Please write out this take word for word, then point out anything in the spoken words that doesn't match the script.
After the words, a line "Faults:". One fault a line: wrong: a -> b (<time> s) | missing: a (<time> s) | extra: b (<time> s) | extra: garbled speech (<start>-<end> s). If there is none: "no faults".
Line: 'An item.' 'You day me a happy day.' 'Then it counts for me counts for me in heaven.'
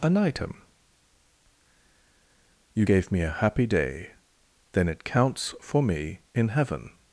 'An item.' 'You gave me a happy day.' 'Then it counts for me in heaven.'
Faults:
wrong: day -> gave (2.8 s)
missing: counts for me (6.2 s)